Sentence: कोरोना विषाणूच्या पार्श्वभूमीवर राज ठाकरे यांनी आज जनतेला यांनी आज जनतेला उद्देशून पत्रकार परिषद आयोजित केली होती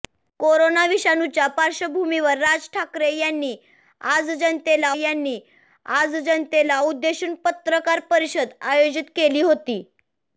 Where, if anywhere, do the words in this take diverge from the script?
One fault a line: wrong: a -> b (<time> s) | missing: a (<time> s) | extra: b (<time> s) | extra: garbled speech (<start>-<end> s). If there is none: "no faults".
no faults